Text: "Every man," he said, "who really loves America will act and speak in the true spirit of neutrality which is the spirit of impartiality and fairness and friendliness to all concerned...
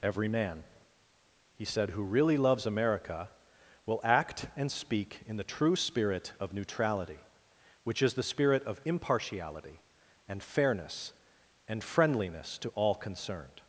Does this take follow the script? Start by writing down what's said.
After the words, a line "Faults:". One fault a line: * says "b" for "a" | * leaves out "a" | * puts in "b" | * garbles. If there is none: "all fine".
"Every man," he said, "who really loves America will act and speak in the true spirit of neutrality which is the spirit of impartiality and fairness and friendliness to all concerned...
Faults:
all fine